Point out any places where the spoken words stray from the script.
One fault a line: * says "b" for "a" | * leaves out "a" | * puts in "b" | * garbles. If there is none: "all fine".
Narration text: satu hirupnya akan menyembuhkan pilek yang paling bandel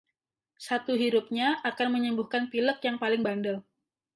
all fine